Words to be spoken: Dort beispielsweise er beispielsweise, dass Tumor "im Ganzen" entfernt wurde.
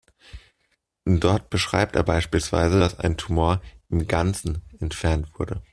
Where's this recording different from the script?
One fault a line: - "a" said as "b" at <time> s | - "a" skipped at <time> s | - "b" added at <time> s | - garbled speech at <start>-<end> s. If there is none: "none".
- "beispielsweise" said as "beschreibt" at 1.5 s
- "ein" added at 3.0 s